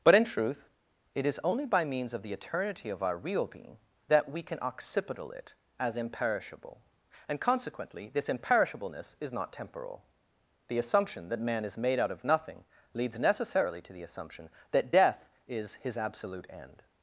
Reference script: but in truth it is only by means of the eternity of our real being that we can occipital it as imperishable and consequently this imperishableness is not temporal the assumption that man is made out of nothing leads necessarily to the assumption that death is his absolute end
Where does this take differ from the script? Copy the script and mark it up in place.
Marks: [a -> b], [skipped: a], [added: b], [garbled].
but in truth it is only by means of the eternity of our real being that we can occipital it as imperishable and consequently this imperishableness is not temporal the assumption that man is made out of nothing leads necessarily to the assumption that death is his absolute end